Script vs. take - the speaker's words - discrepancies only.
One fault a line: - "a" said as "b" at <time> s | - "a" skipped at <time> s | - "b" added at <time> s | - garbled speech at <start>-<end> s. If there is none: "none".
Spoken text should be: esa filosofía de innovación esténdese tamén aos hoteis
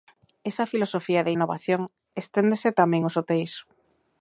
none